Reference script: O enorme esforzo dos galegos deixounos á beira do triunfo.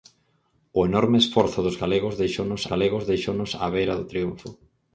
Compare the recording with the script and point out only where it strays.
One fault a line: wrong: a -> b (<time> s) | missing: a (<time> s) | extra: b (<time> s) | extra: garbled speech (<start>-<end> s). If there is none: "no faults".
extra: galegos deixounos (2.7 s)